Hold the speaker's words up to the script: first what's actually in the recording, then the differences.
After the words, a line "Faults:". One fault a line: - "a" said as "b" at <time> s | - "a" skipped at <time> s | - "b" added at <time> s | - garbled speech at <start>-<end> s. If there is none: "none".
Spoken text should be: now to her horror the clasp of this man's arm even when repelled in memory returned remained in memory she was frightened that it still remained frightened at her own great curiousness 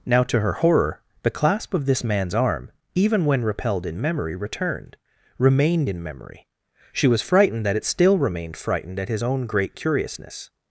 now to her horror the clasp of this man's arm even when repelled in memory returned remained in memory she was frightened that it still remained frightened at his own great curiousness
Faults:
- "her" said as "his" at 9.1 s